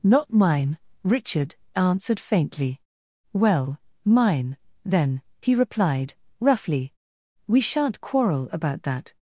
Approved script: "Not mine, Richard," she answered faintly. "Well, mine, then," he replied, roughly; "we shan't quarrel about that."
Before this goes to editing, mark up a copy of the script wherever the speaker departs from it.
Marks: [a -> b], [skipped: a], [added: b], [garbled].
"Not mine, Richard," [skipped: she] answered faintly. "Well, mine, then," he replied, roughly; "we shan't quarrel about that."